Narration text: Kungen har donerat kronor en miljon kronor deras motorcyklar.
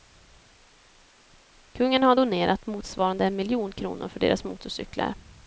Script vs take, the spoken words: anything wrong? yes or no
yes